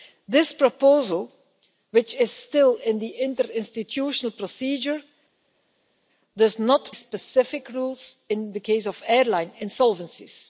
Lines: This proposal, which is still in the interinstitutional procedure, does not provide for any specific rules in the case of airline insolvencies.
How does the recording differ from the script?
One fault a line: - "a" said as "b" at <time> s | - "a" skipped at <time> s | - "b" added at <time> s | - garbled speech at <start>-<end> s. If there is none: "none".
- "provide for any" skipped at 6.9 s